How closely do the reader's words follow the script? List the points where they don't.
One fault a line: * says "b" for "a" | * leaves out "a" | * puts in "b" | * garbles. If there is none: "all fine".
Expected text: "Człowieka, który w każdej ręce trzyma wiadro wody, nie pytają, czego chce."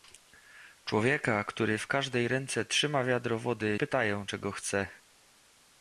* leaves out "nie"